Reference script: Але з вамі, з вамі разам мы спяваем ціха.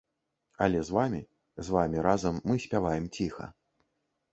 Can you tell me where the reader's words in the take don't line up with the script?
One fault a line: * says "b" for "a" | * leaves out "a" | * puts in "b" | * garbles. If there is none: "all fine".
all fine